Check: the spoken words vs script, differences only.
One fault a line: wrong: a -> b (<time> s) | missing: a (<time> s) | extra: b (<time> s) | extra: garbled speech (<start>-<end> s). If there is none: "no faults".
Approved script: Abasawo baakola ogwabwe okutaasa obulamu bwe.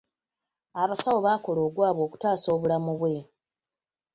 no faults